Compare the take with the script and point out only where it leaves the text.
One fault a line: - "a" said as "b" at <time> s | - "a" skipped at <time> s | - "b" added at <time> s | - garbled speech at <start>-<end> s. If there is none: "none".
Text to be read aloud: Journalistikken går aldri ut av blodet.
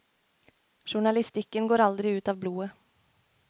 none